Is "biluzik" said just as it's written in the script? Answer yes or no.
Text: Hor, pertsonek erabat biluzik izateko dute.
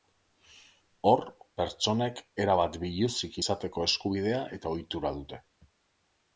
yes